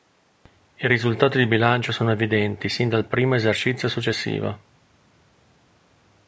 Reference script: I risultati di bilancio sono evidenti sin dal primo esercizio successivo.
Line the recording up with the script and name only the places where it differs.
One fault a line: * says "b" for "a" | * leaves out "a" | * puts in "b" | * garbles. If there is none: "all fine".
all fine